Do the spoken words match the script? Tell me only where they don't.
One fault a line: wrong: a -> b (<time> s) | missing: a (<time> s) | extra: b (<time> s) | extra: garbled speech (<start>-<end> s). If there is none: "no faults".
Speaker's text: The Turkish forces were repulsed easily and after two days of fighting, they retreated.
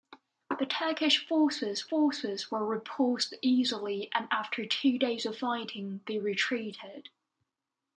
extra: forces (1.9 s)